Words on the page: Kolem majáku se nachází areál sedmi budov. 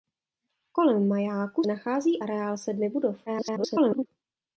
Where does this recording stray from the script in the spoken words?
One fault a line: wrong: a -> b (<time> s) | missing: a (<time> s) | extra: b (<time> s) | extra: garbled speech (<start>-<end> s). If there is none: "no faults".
missing: se (1.6 s)
extra: garbled speech (3.3-4.1 s)